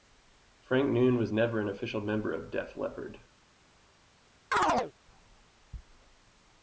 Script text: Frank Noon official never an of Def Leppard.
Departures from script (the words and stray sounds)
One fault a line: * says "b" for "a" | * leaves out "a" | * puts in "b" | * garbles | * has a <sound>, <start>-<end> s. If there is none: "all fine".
* says "was" for "official"
* puts in "official member"
* has a chirp, 4.5-4.9 s